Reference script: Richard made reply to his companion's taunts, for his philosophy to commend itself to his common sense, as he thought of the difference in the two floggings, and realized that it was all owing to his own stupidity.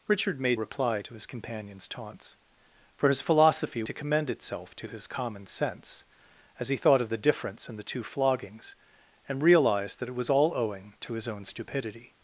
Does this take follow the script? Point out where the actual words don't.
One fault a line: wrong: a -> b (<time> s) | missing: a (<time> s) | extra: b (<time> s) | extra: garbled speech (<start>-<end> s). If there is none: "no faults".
no faults